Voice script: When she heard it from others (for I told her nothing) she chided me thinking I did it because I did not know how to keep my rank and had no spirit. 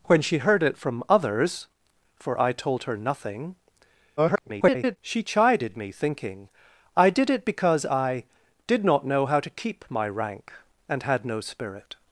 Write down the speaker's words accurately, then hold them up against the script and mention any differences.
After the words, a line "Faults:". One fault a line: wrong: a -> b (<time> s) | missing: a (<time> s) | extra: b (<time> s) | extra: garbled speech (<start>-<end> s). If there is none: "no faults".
When she heard it from others (for I told her nothing) [garbled] she chided me thinking I did it because I did not know how to keep my rank and had no spirit.
Faults:
extra: garbled speech (4.2-5.0 s)